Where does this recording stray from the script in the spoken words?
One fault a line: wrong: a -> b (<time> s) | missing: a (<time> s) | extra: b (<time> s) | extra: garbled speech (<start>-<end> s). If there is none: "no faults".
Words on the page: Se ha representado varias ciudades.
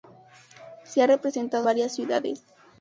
no faults